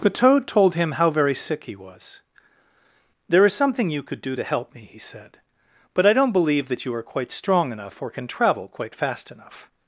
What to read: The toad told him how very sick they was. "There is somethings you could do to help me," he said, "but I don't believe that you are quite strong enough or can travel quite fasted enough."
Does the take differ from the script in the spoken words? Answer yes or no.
yes